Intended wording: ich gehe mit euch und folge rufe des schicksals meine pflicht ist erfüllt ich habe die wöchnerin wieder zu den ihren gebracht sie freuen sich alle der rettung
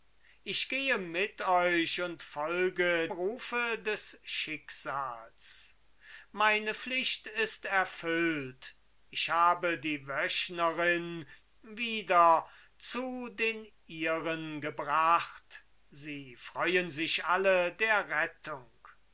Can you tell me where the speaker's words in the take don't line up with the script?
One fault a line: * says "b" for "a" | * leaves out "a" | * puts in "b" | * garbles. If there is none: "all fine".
all fine